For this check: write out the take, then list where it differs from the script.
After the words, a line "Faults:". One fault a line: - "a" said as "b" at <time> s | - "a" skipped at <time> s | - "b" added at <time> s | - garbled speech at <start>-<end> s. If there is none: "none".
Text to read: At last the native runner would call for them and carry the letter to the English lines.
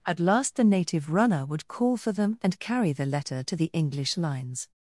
At last the native runner would call for them and carry the letter to the English lines.
Faults:
none